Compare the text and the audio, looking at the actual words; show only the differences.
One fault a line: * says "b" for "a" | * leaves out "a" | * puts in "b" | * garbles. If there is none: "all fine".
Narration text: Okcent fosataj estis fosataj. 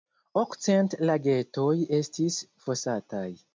* says "lagetoj" for "fosataj"